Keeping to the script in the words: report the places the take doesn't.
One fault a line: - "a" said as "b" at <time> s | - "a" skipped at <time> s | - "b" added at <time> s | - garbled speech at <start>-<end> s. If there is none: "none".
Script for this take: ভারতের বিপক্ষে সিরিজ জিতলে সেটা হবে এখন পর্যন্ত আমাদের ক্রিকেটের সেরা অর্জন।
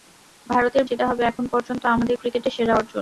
- "বিপক্ষে সিরিজ জিতলে" skipped at 0.8 s